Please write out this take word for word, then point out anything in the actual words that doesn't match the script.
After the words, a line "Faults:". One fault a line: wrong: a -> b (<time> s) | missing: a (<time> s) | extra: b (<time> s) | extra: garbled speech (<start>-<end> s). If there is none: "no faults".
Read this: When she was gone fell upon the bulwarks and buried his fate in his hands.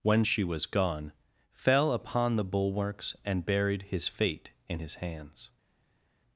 When she was gone fell upon the bulwarks and buried his fate in his hands.
Faults:
no faults